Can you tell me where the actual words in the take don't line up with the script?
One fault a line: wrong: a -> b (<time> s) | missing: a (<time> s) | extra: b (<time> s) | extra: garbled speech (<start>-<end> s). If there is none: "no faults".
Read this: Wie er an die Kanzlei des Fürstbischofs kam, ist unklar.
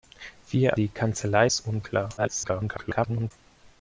missing: an (0.8 s)
missing: des Fürstbischofs kam (1.5 s)
extra: garbled speech (2.2-3.3 s)